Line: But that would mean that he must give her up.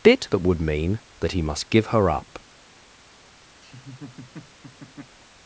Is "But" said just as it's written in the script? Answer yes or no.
no